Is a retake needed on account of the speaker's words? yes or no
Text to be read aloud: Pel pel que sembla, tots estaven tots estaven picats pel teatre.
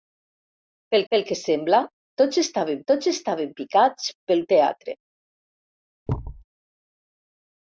no